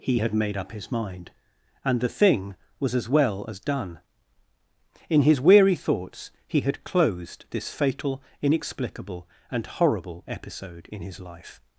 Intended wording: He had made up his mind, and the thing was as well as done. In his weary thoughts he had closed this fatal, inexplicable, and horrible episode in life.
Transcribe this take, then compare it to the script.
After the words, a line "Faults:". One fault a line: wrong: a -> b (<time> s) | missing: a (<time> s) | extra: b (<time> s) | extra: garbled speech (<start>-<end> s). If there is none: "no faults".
He had made up his mind, and the thing was as well as done. In his weary thoughts he had closed this fatal, inexplicable, and horrible episode in his life.
Faults:
extra: his (11.0 s)